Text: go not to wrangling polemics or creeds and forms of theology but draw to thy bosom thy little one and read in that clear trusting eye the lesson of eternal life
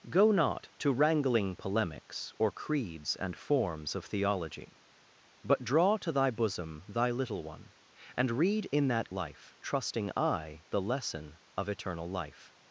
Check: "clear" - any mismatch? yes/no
yes